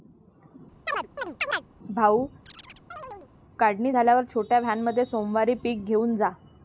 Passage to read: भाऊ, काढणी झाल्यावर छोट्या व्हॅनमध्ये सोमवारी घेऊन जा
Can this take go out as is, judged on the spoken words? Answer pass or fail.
fail